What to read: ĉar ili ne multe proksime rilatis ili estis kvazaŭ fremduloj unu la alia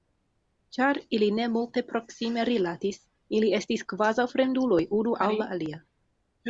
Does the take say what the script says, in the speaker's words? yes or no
no